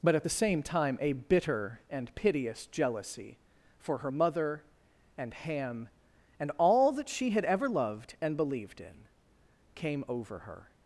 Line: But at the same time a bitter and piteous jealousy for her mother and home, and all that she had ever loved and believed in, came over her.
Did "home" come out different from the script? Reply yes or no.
yes